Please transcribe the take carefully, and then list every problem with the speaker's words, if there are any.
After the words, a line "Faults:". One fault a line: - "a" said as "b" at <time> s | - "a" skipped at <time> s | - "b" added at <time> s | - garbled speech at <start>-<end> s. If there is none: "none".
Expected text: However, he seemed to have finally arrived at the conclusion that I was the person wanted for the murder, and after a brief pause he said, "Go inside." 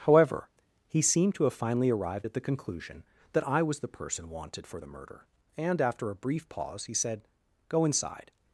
However, he seemed to have finally arrived at the conclusion that I was the person wanted for the murder, and after a brief pause he said, "Go inside."
Faults:
none